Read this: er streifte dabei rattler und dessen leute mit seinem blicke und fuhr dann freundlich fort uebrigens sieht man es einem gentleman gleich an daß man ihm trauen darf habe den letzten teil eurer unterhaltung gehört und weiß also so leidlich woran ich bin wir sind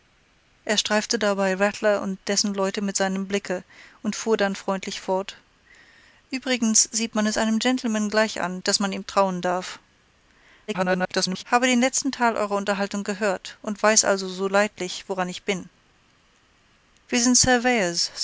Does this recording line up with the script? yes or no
no